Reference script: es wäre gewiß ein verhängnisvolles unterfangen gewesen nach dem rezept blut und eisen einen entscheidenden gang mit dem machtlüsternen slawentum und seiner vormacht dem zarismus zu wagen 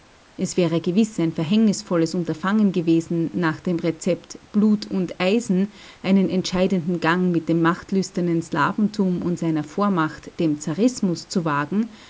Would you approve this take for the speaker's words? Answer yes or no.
yes